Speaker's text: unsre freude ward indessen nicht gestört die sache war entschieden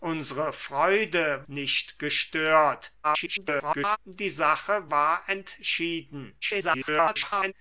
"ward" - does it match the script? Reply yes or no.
no